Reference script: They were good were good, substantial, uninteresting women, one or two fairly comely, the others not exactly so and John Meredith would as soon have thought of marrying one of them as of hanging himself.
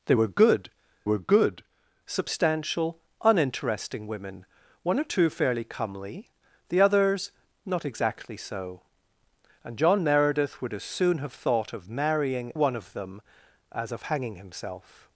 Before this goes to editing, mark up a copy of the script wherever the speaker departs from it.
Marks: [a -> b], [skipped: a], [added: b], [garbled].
They were good were good, substantial, uninteresting women, one or two fairly comely, the others not exactly so and John Meredith would as soon have thought of marrying one of them as of hanging himself.